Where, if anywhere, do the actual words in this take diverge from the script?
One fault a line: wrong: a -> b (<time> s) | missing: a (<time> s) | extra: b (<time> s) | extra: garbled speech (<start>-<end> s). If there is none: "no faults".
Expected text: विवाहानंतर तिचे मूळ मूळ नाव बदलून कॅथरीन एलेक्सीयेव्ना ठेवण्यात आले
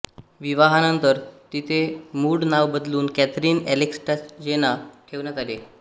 missing: मूळ (2.4 s)